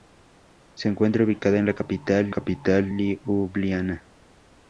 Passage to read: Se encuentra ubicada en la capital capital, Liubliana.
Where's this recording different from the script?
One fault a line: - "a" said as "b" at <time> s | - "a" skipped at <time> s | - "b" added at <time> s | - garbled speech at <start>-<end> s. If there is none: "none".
none